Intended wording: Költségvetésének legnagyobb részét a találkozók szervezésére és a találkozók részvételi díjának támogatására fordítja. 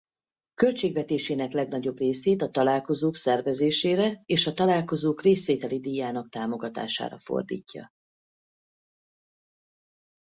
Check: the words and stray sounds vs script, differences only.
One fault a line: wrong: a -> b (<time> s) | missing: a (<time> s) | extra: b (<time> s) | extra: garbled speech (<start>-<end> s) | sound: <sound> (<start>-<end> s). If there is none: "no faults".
no faults